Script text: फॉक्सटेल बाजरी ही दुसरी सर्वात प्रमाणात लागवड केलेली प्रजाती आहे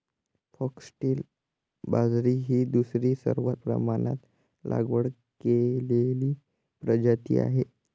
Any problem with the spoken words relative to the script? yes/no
no